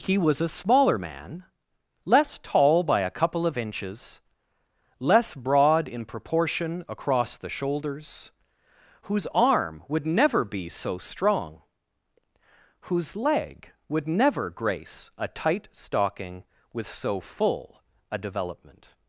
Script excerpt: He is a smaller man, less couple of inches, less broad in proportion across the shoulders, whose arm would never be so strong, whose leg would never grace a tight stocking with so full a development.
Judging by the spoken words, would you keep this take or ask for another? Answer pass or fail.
fail